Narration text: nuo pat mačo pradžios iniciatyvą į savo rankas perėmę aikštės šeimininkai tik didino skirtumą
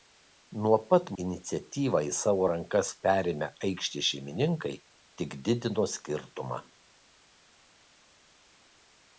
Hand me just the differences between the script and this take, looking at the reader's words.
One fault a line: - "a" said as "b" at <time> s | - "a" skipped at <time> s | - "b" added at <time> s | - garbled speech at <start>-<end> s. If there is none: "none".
- "mačo pradžios" skipped at 1.1 s